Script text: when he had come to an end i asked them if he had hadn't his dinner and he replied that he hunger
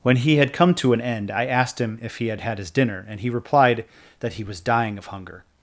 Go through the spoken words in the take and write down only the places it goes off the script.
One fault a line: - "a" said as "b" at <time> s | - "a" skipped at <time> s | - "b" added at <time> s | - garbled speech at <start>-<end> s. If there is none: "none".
- "them" said as "him" at 1.8 s
- "hadn't" said as "had" at 2.4 s
- "was dying of" added at 4.4 s